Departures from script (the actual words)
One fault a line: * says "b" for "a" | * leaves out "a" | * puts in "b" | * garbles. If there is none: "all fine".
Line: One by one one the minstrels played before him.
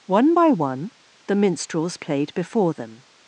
* leaves out "one"
* says "them" for "him"